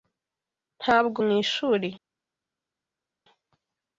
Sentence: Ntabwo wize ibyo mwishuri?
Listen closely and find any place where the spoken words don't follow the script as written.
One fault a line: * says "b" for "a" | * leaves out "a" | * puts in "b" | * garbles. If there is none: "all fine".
* leaves out "wize ibyo"